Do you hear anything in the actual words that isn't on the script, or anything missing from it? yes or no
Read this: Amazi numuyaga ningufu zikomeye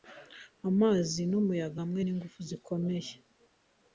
yes